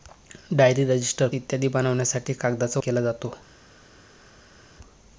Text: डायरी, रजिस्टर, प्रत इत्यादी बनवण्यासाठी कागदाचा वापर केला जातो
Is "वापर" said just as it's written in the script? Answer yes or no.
no